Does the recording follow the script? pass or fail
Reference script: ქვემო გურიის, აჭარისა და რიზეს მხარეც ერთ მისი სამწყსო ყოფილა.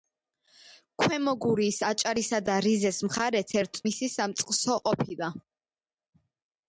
pass